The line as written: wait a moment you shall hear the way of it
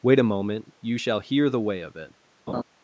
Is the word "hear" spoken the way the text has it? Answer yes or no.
yes